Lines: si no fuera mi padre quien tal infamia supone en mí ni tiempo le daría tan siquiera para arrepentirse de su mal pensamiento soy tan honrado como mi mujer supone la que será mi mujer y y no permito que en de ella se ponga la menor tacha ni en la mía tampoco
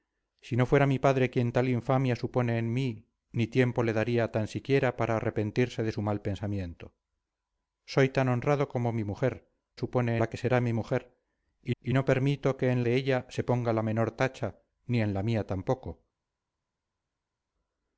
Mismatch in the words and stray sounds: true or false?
false